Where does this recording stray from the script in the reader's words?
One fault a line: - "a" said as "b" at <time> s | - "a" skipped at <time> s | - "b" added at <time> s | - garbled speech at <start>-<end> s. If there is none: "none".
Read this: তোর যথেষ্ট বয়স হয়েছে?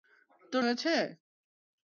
- "যথেষ্ট বয়স" skipped at 0.6 s